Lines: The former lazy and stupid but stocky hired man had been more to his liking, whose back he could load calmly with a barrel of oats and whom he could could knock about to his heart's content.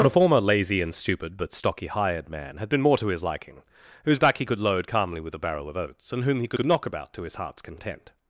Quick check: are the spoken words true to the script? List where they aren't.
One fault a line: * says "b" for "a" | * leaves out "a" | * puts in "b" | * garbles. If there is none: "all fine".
all fine